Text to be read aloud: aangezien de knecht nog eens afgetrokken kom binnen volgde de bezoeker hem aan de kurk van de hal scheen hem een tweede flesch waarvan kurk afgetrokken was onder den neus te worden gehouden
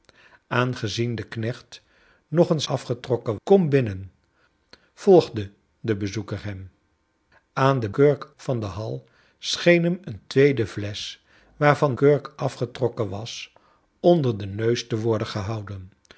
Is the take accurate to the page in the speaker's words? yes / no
yes